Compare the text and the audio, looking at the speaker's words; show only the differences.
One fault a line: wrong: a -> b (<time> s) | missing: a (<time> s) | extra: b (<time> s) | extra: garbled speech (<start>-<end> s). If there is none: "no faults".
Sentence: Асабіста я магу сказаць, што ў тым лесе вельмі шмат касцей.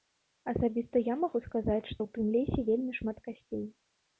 no faults